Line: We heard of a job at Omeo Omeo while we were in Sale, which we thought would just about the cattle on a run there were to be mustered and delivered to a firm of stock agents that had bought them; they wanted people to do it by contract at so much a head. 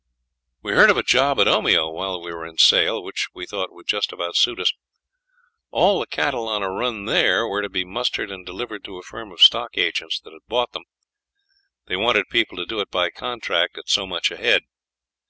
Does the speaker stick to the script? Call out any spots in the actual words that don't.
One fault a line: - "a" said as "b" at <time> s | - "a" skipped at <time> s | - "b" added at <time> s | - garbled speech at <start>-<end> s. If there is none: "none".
- "Omeo" skipped at 1.9 s
- "suit us All" added at 4.3 s